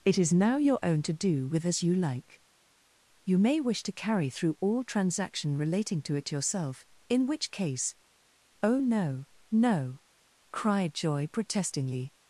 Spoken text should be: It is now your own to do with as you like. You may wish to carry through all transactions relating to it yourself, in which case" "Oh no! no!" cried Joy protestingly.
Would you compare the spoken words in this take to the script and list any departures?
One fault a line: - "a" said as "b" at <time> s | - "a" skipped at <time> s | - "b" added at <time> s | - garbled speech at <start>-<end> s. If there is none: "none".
- "transactions" said as "transaction" at 4.8 s